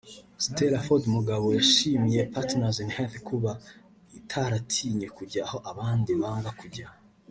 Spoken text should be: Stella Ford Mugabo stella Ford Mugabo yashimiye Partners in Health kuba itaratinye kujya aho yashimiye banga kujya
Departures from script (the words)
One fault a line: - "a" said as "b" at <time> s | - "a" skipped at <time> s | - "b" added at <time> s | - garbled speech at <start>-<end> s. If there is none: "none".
- "stella Ford Mugabo" skipped at 1.5 s
- "yashimiye" said as "abandi" at 5.7 s